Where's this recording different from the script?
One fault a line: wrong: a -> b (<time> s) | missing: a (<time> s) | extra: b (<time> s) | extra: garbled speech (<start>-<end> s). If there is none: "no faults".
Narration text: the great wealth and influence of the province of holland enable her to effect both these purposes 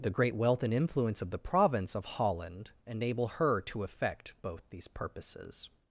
no faults